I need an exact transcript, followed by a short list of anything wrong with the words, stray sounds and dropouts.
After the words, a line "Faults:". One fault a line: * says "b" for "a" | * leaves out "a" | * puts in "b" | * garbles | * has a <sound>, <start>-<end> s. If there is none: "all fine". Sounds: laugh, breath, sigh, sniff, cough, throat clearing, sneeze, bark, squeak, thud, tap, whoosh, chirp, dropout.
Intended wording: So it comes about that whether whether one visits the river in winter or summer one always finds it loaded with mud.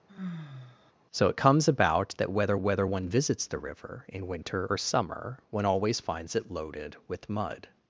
So it comes about that whether whether one visits the river in winter or summer one always finds it loaded with mud.
Faults:
* has a sigh, 0.1-0.9 s